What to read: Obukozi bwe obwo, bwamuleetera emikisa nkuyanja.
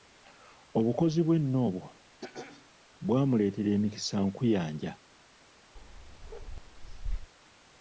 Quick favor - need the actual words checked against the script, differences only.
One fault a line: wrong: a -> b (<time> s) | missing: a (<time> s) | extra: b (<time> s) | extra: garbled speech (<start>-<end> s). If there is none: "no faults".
extra: nno (1.4 s)